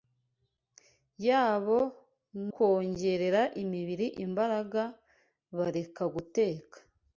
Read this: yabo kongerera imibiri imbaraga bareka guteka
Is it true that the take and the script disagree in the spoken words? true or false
false